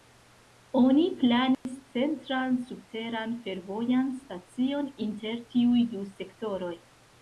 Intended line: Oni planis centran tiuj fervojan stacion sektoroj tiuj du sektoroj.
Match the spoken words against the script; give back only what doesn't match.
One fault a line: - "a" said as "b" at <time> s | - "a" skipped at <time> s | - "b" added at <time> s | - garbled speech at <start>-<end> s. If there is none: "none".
- "tiuj" said as "subteran" at 2.7 s
- "sektoroj" said as "inter" at 5.1 s